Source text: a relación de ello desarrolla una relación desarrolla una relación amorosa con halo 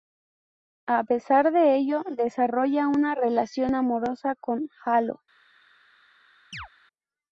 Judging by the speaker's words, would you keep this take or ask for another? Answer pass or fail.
fail